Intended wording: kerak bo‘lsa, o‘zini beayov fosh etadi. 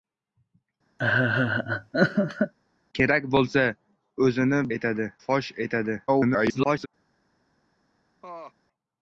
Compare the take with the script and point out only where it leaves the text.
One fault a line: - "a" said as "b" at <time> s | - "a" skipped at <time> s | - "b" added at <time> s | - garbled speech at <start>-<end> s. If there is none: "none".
- "beayov" said as "etadi" at 4.8 s
- garbled speech at 6.1-6.9 s